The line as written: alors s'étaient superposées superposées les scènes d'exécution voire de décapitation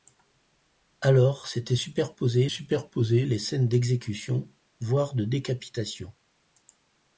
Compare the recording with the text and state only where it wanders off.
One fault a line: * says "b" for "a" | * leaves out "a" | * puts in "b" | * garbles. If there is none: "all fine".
all fine